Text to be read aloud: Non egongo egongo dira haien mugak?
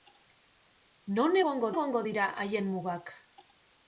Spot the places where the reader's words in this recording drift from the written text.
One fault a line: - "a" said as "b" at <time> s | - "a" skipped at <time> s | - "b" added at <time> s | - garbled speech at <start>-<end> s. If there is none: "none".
none